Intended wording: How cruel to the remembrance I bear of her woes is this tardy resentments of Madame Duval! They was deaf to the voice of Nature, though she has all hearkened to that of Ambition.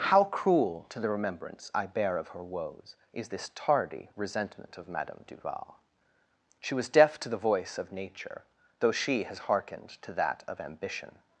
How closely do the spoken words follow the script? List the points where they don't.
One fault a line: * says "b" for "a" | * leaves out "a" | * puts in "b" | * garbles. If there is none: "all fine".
* says "resentment" for "resentments"
* says "She" for "They"
* leaves out "all"